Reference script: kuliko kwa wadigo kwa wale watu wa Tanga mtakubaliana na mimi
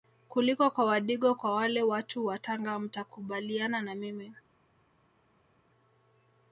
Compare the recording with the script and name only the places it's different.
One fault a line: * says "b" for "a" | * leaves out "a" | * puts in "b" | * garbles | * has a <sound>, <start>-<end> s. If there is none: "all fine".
all fine